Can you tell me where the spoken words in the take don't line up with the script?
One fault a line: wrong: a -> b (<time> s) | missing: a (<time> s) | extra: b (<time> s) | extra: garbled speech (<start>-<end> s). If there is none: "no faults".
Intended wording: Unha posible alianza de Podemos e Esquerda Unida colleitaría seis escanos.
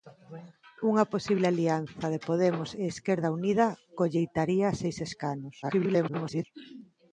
extra: garbled speech (5.6-6.4 s)